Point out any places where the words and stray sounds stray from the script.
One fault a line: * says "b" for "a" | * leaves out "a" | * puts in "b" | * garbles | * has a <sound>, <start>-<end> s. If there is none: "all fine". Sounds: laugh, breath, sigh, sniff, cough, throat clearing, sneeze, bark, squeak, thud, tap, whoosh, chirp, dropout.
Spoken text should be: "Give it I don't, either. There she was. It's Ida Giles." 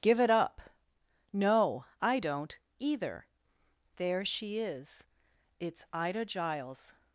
* puts in "up No"
* says "is" for "was"